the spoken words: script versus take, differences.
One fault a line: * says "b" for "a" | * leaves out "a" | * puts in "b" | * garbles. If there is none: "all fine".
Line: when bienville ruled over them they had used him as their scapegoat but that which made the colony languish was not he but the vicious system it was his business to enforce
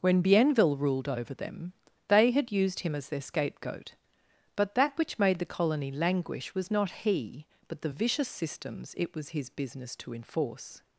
* says "systems" for "system"